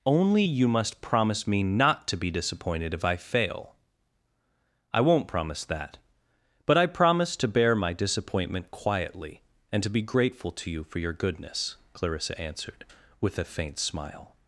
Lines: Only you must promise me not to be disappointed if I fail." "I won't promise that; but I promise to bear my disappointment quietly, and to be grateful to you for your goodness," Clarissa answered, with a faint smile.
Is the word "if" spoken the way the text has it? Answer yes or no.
yes